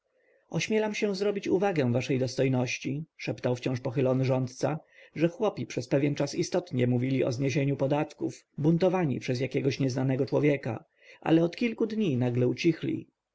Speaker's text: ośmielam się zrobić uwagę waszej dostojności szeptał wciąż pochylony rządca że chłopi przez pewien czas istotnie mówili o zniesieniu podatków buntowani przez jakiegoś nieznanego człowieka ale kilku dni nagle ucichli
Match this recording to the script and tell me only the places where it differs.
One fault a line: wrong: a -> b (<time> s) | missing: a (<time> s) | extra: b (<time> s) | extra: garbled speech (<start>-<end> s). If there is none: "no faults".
extra: od (11.4 s)